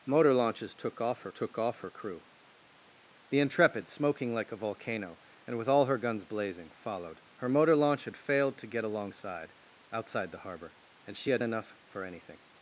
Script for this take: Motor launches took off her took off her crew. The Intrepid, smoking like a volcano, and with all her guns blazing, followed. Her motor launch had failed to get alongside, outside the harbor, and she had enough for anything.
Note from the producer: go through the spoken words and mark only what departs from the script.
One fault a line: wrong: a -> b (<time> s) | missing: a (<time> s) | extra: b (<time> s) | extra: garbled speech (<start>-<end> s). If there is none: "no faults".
no faults